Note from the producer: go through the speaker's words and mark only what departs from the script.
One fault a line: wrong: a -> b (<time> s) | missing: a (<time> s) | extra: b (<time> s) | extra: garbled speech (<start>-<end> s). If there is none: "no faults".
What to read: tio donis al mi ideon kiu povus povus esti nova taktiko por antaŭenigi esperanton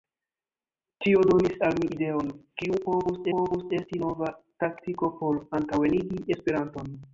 no faults